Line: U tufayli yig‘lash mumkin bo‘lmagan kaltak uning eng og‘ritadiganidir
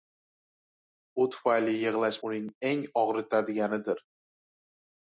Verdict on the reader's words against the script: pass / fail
fail